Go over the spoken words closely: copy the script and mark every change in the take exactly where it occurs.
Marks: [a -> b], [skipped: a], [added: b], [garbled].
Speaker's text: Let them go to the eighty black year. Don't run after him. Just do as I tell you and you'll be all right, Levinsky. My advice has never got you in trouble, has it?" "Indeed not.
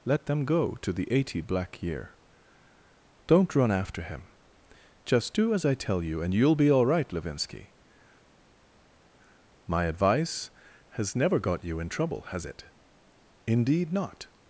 Let them go to the eighty black year. Don't run after him. Just do as I tell you and you'll be all right, Levinsky. My advice has never got you in trouble, has it?" "Indeed not.